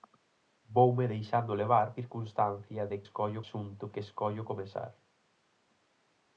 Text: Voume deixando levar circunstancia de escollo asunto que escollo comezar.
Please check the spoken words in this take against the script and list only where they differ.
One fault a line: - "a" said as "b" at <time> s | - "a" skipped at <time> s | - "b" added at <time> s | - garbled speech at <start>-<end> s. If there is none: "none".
none